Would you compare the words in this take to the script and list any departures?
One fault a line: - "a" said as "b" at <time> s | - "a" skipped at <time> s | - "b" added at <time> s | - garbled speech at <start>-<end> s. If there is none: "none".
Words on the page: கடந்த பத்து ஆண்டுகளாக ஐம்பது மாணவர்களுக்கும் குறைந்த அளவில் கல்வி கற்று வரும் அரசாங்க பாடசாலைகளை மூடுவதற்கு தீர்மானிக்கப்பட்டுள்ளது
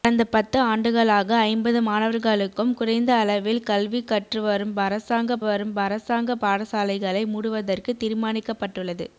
- "வரும் அரசாங்க" added at 5.4 s